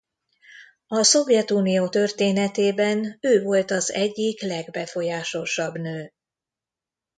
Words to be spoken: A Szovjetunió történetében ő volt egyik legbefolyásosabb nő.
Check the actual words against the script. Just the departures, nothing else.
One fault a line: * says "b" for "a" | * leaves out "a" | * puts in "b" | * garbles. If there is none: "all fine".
* puts in "az"